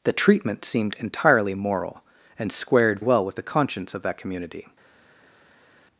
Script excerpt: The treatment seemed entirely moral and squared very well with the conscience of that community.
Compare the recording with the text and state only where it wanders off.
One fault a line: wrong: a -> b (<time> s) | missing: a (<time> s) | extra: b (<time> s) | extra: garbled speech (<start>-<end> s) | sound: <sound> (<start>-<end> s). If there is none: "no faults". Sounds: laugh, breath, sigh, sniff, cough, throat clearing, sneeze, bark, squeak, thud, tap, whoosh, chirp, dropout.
missing: very (3.0 s)